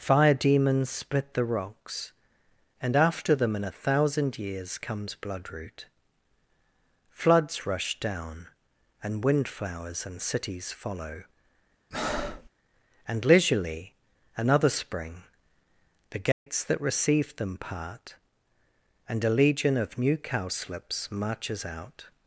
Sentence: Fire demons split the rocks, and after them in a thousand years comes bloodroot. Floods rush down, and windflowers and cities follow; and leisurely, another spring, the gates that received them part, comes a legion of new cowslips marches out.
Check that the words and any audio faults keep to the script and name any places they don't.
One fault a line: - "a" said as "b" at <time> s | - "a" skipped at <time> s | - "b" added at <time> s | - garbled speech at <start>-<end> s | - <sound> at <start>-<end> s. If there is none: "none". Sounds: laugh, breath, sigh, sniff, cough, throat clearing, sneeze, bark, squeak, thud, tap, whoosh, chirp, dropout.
- breath at 11.9-12.5 s
- dropout at 16.3-16.5 s
- "comes" said as "and" at 19.1 s